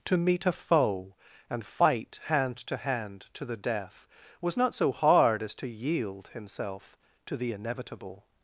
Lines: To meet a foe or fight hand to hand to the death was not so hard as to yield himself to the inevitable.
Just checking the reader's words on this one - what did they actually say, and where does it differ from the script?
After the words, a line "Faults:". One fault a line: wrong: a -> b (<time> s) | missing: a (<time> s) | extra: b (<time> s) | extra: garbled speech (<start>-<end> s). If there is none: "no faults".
To meet a foe and fight hand to hand to the death was not so hard as to yield himself to the inevitable.
Faults:
wrong: or -> and (1.5 s)